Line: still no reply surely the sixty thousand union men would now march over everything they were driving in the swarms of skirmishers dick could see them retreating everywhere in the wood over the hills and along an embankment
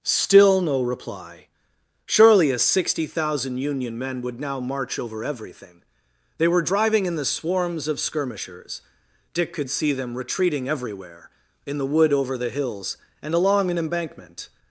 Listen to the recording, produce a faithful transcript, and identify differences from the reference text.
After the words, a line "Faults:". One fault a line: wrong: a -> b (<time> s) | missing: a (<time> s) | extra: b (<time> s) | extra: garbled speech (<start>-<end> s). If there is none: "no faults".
still no reply surely a sixty thousand union men would now march over everything they were driving in the swarms of skirmishers dick could see them retreating everywhere in the wood over the hills and along an embankment
Faults:
wrong: the -> a (2.5 s)